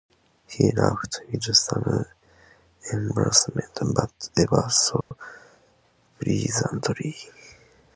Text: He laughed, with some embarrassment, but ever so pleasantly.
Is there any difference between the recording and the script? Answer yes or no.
no